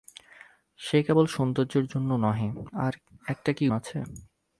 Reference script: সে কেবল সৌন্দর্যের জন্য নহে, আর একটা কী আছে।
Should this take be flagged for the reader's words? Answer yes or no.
no